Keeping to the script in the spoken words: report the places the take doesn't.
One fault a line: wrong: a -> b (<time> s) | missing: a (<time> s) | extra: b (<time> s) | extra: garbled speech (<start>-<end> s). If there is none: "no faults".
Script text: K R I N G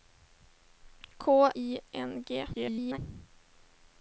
missing: R (1.3 s)
extra: garbled speech (2.5-3.0 s)